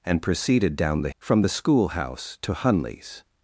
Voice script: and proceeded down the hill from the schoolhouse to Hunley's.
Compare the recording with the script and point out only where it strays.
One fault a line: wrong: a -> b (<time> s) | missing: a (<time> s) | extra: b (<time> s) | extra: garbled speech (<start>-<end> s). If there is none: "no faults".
missing: hill (1.1 s)